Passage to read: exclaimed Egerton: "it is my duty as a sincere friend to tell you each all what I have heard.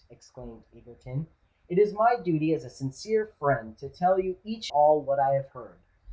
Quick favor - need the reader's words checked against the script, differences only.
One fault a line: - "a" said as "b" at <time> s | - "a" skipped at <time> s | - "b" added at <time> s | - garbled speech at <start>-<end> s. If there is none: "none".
none